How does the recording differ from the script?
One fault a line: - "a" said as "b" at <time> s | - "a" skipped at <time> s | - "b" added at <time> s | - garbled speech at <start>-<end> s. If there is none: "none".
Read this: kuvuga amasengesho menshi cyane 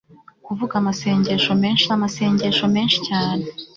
- "amasengesho menshi" added at 2.0 s